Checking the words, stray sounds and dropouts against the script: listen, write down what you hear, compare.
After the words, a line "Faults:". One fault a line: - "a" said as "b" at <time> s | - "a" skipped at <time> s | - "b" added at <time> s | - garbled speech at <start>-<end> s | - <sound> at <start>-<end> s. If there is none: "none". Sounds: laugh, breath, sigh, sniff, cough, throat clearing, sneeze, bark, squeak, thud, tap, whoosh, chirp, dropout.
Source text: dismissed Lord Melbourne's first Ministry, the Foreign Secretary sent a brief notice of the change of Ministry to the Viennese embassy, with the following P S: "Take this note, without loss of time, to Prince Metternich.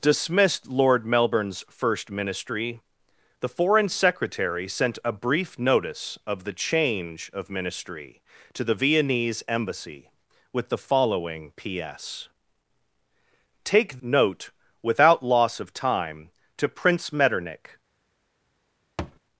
dismissed Lord Melbourne's first Ministry, the Foreign Secretary sent a brief notice of the change of Ministry to the Viennese embassy, with the following P S: "Take note, without loss of time, to Prince Metternich.
Faults:
- "this" skipped at 14.0 s
- thud at 19.0-19.2 s